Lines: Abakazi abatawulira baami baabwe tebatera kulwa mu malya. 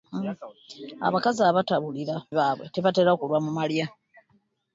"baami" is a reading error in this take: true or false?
true